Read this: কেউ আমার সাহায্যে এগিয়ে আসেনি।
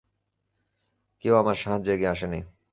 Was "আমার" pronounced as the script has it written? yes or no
yes